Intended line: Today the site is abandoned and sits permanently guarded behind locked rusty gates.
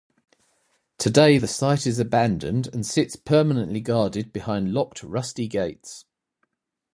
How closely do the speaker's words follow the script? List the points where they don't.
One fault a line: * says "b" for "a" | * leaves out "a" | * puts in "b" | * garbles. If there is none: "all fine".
all fine